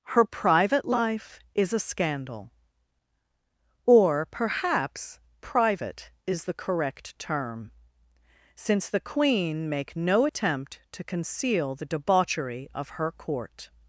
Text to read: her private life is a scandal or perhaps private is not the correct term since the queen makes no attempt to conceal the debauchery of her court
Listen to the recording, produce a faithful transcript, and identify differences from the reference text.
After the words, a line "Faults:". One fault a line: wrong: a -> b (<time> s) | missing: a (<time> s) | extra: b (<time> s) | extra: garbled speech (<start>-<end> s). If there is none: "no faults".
her private life is a scandal or perhaps private is the correct term since the queen make no attempt to conceal the debauchery of her court
Faults:
missing: not (6.4 s)
wrong: makes -> make (9.7 s)